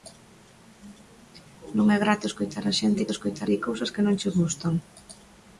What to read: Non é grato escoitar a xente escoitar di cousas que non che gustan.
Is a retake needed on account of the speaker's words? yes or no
no